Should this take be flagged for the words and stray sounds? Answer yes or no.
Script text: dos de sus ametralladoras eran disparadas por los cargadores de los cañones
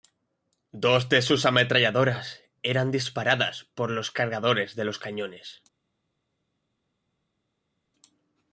no